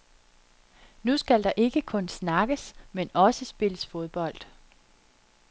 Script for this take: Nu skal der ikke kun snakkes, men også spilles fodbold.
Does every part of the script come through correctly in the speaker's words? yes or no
yes